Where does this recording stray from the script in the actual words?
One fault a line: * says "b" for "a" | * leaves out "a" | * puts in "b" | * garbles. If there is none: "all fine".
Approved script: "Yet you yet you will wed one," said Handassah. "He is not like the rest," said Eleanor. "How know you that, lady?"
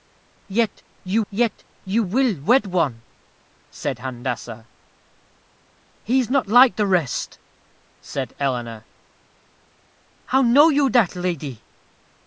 all fine